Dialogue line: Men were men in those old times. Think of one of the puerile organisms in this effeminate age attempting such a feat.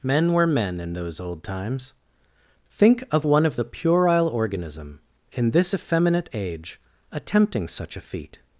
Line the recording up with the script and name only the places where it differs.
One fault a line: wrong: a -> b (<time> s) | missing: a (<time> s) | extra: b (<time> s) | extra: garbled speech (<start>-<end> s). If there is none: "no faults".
wrong: organisms -> organism (4.3 s)